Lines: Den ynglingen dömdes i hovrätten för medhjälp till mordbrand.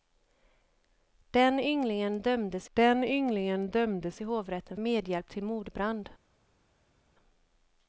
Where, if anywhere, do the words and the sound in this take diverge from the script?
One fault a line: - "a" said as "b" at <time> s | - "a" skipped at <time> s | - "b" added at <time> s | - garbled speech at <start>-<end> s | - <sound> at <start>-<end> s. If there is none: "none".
- "den ynglingen dömdes" added at 2.7 s
- "för" skipped at 4.8 s